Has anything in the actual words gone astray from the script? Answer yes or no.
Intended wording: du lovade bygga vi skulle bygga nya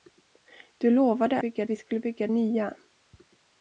no